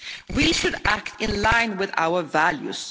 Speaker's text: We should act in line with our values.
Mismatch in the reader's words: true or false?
false